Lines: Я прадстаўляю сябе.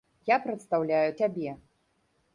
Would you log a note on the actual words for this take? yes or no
no